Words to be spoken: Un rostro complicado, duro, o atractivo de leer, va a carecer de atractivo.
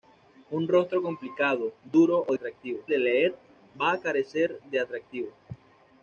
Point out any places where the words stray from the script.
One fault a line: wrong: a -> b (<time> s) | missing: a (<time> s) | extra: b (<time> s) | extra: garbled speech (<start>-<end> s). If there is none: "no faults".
no faults